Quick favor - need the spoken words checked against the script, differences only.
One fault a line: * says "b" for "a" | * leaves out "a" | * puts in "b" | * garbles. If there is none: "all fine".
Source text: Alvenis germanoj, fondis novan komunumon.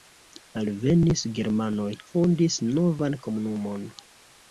all fine